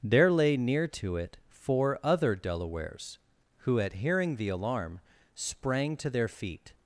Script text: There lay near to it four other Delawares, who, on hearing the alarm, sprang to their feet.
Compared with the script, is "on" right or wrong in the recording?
wrong